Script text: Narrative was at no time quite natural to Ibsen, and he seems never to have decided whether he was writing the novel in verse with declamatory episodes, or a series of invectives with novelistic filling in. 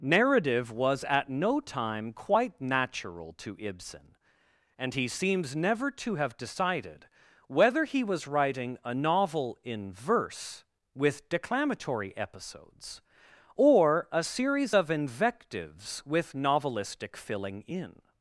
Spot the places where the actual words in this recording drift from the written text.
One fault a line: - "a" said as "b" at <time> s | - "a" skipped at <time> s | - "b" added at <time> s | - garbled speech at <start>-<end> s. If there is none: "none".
- "the" said as "a" at 8.8 s